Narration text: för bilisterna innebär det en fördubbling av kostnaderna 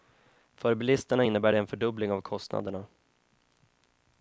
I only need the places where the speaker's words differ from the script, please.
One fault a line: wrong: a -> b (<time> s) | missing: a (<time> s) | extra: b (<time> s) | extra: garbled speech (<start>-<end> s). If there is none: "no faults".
no faults